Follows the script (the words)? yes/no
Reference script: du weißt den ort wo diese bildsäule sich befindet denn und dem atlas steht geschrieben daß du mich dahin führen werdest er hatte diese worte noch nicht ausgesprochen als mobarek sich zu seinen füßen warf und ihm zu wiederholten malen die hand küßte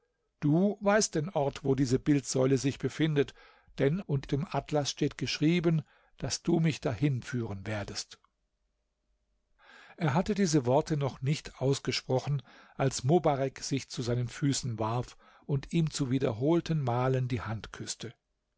yes